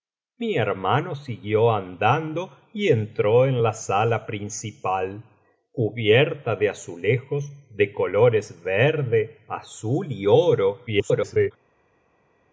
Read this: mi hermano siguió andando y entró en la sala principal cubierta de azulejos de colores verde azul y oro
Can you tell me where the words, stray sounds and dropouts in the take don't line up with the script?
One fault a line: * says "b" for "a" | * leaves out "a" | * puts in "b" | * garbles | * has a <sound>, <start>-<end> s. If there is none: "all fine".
* garbles